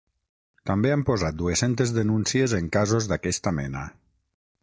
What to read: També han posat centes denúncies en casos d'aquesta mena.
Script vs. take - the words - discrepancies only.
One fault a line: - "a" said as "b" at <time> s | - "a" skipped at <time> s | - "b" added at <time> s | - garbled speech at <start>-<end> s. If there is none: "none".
- "dues" added at 1.4 s